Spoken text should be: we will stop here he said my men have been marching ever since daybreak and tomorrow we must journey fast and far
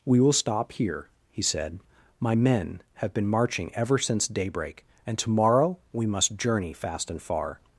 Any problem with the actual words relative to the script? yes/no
no